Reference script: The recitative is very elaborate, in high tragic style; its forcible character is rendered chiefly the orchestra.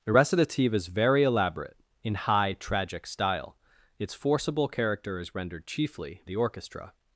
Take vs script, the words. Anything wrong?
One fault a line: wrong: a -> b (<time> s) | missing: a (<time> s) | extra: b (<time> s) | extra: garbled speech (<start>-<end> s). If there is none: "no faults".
no faults